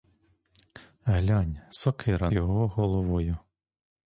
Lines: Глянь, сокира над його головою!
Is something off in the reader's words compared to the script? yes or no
yes